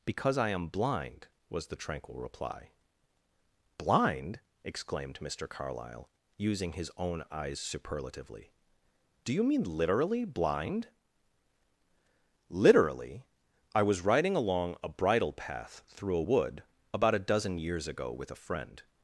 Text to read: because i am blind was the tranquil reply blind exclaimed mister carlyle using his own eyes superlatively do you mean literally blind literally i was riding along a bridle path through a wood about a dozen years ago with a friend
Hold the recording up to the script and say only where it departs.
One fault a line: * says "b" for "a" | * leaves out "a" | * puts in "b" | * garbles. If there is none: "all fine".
all fine